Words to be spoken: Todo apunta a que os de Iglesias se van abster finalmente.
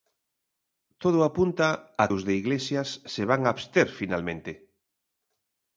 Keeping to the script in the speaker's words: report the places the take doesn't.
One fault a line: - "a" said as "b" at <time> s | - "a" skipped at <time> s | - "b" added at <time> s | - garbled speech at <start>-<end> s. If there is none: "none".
- "que" skipped at 2.0 s